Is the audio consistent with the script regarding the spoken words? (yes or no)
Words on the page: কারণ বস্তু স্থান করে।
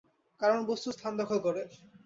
no